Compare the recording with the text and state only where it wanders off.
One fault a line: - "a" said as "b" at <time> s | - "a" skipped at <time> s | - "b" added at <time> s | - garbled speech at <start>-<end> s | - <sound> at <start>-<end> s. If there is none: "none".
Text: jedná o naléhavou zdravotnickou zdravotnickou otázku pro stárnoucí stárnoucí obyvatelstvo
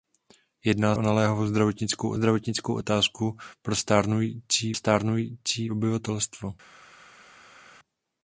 none